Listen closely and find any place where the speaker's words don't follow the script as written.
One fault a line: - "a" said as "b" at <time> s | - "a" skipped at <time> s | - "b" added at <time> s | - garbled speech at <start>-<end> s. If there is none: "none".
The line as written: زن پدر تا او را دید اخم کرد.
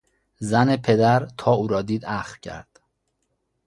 none